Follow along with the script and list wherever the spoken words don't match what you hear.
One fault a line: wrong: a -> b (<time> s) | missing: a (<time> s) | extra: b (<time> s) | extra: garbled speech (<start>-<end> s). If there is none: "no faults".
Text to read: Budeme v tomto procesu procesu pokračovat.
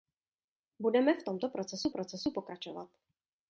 no faults